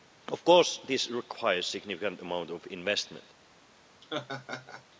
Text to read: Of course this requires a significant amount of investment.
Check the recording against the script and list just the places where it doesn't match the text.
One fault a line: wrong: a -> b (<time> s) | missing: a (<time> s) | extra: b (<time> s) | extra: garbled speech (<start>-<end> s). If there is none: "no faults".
no faults